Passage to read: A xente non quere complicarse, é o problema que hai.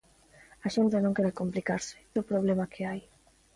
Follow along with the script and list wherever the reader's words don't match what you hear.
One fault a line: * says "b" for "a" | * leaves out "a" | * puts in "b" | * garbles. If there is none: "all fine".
all fine